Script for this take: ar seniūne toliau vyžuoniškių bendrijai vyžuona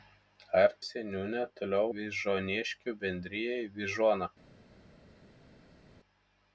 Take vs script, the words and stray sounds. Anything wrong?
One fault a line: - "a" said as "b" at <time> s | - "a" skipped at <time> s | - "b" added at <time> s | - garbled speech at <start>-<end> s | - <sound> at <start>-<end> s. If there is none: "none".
none